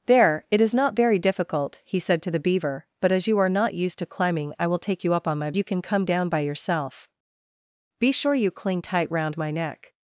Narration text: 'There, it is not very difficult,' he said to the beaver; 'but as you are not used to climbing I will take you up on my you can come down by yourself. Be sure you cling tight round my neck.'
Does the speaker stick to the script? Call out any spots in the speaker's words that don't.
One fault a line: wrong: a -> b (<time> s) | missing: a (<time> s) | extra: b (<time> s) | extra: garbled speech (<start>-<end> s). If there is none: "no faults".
no faults